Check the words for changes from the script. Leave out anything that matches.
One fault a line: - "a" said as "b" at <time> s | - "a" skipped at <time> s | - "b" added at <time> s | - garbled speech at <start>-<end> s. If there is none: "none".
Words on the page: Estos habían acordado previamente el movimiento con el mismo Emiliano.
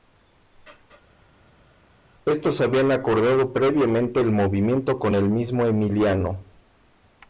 none